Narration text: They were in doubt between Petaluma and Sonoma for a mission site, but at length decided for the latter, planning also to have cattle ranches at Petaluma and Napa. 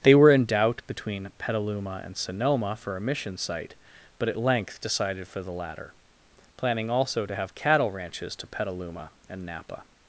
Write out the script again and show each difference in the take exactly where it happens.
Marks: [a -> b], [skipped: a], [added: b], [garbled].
They were in doubt between Petaluma and Sonoma for a mission site, but at length decided for the latter, planning also to have cattle ranches [at -> to] Petaluma and Napa.